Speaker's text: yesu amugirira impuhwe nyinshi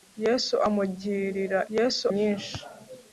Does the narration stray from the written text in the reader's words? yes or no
yes